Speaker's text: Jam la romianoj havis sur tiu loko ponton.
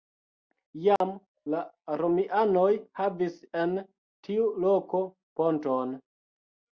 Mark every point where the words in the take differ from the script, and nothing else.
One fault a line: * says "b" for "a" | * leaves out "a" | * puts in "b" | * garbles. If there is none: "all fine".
* says "en" for "sur"